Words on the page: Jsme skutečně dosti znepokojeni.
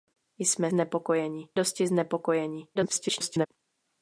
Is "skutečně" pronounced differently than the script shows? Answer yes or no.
yes